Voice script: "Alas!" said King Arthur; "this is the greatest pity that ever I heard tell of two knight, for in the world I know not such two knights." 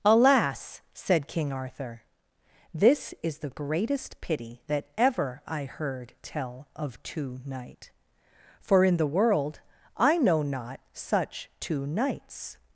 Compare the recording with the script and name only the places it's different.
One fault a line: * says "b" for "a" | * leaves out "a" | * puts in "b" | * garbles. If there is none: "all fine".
all fine